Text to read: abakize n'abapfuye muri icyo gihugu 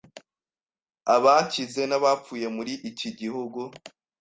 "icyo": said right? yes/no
no